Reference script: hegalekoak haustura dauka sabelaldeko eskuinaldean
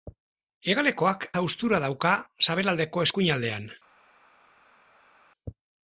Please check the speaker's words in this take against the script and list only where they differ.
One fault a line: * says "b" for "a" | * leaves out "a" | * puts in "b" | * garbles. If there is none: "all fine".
all fine